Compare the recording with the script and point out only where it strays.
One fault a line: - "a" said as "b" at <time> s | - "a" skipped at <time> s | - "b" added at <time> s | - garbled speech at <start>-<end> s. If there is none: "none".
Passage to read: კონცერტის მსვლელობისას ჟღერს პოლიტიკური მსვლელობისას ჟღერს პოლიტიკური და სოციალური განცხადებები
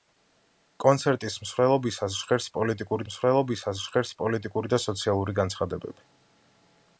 none